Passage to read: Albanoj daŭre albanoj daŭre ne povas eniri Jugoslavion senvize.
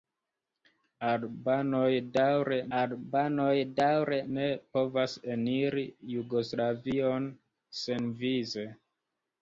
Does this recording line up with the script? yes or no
yes